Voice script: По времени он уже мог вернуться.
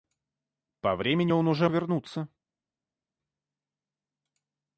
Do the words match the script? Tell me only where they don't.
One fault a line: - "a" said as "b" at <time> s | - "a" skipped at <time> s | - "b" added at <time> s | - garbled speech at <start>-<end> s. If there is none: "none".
- "мог" skipped at 1.7 s